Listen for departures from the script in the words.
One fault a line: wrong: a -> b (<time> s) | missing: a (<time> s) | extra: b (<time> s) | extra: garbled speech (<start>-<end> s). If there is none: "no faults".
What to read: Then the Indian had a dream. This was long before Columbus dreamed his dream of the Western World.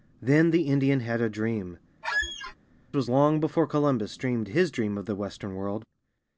missing: This (1.8 s)